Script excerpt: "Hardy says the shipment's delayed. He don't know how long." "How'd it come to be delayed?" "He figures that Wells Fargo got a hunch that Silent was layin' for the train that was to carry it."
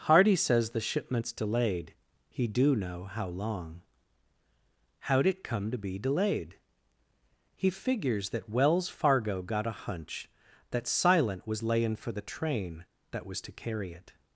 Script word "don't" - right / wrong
wrong